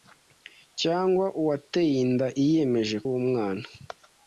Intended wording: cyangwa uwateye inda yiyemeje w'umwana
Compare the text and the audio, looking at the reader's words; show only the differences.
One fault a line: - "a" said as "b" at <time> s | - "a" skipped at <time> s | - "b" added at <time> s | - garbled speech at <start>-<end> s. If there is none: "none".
none